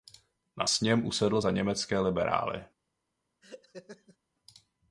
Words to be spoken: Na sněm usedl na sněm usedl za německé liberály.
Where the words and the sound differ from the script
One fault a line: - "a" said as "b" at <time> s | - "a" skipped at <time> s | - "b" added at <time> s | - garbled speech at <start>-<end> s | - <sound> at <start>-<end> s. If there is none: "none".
- "na sněm usedl" skipped at 1.4 s
- laugh at 3.4-4.2 s